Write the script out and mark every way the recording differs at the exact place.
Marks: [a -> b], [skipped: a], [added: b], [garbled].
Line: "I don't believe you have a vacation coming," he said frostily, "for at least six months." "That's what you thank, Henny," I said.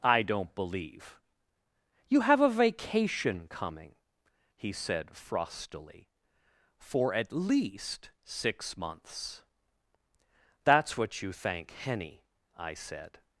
"I don't believe you have a vacation coming," he said frostily, "for at least six months." "That's what you thank, Henny," I said.